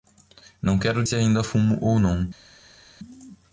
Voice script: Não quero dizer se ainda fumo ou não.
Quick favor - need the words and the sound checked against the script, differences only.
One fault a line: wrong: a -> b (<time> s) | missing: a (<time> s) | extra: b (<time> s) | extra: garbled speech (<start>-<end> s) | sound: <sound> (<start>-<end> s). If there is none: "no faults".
missing: dizer (1.1 s)